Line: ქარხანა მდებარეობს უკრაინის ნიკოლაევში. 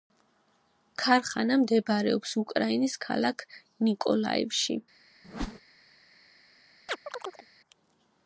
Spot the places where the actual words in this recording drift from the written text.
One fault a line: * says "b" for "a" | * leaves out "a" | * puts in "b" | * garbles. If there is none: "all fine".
* puts in "ქალაქ"